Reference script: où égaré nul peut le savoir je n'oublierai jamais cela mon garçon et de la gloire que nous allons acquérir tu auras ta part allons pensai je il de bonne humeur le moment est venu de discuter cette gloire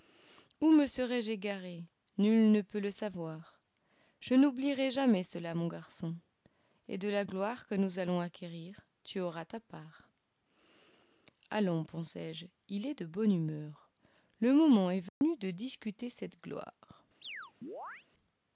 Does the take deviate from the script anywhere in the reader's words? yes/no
yes